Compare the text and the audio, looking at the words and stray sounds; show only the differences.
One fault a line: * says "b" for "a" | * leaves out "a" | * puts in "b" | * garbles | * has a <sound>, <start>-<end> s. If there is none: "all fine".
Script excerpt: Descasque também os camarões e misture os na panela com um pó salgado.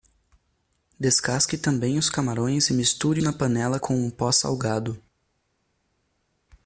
* leaves out "os"